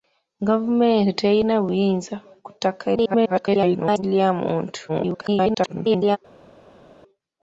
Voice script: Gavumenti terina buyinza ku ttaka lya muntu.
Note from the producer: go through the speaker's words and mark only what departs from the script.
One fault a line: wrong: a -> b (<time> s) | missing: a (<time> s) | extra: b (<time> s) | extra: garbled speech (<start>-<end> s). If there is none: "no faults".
extra: garbled speech (3.0-4.0 s)
extra: garbled speech (4.9-6.2 s)